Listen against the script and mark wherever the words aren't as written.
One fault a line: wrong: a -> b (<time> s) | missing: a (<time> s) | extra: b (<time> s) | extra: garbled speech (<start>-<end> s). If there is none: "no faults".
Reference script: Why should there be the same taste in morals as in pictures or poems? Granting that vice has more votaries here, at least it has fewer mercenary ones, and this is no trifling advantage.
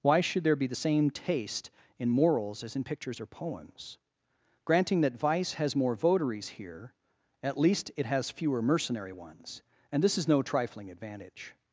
no faults